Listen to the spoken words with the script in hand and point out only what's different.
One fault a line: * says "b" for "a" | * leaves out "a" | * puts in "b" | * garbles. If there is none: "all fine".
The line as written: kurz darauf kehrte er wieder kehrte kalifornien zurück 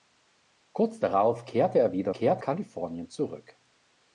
all fine